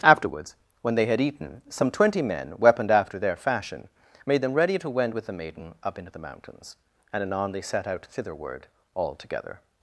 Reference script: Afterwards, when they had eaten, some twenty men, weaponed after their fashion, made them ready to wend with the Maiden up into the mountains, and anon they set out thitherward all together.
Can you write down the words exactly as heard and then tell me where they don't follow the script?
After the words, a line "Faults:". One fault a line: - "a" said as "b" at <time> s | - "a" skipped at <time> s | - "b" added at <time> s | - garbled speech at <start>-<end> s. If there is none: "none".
Afterwards, when they had eaten, some twenty men, weaponed after their fashion, made them ready to wend with the Maiden up into the mountains, and anon they set out thitherward all together.
Faults:
none